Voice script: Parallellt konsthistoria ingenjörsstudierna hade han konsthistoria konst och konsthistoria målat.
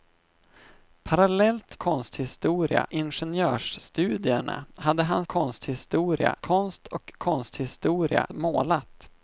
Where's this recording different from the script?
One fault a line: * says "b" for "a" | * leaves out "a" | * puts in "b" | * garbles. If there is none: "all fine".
all fine